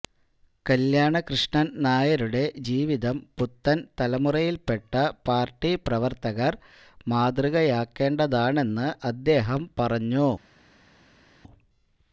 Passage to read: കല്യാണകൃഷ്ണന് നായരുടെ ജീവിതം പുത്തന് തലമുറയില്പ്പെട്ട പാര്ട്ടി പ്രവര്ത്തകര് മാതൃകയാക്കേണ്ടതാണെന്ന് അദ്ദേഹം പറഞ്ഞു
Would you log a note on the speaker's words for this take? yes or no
no